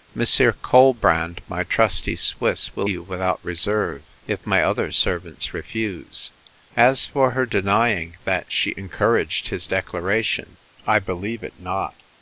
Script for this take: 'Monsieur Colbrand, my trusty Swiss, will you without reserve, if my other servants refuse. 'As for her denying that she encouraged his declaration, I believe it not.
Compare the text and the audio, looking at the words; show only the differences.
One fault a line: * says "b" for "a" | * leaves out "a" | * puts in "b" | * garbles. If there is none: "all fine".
all fine